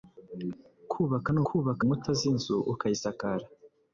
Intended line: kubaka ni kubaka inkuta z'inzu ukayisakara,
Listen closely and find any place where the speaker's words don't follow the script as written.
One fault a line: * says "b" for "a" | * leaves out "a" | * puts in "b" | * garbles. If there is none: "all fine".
all fine